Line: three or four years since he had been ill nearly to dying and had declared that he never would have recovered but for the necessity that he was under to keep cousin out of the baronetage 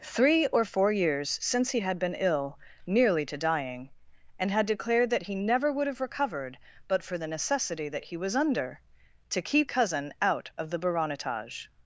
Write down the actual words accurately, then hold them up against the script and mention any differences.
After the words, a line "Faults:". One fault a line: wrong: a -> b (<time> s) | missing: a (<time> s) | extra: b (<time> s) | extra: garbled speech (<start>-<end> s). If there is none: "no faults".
three or four years since he had been ill nearly to dying and had declared that he never would have recovered but for the necessity that he was under to keep cousin out of the baronetage
Faults:
no faults